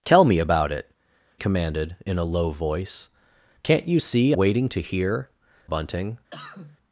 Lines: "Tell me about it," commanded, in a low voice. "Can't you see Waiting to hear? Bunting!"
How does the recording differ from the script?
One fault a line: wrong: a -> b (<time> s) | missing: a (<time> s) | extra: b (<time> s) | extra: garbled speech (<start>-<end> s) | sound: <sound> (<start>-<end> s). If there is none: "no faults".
sound: cough (6.3-6.8 s)